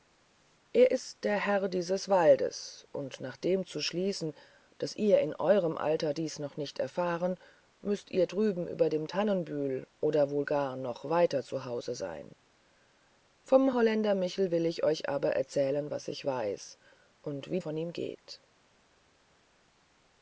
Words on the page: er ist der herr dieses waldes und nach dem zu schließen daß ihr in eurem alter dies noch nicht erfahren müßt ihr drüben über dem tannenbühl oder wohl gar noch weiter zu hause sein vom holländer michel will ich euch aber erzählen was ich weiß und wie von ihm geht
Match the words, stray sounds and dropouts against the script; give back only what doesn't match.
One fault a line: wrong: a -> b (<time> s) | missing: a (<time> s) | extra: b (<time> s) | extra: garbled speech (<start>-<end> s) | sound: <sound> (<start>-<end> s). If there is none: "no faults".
no faults